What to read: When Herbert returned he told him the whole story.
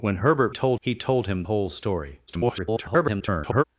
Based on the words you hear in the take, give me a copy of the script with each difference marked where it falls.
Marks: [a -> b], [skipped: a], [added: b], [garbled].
When Herbert [returned -> told] he told him [skipped: the] whole story. [garbled]